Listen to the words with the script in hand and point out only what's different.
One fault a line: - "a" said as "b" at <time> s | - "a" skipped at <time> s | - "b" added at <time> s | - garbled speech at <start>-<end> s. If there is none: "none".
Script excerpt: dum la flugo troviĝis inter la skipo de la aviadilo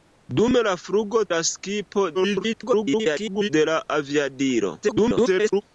- "troviĝis inter" skipped at 1.2 s
- garbled speech at 2.1-3.5 s
- garbled speech at 4.8-5.6 s